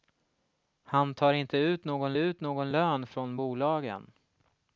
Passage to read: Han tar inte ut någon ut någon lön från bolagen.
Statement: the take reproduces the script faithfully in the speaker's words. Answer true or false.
true